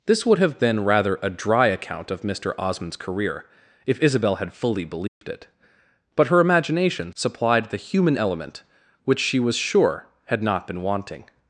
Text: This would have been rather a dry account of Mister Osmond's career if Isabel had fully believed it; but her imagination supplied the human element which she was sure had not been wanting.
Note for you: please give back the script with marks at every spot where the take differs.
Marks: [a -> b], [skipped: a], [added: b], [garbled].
This would have been rather a dry account of Mister Osmond's career if Isabel had fully believed it; but her imagination supplied the human element which she was sure had not been wanting.